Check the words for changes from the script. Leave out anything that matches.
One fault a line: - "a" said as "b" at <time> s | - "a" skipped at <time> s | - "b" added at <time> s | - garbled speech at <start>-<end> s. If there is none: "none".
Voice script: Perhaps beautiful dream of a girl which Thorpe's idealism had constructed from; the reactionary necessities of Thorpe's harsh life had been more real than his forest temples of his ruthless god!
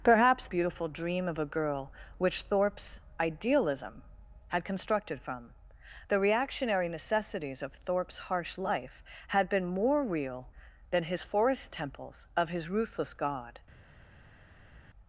none